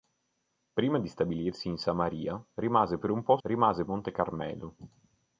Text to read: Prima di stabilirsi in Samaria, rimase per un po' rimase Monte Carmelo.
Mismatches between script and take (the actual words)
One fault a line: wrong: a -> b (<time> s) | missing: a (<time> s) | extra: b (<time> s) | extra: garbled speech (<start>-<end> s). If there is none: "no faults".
no faults